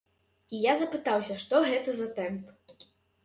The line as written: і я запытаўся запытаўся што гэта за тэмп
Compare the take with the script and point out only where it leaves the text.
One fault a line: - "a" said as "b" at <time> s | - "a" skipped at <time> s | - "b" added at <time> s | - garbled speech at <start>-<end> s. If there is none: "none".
- "запытаўся" skipped at 1.4 s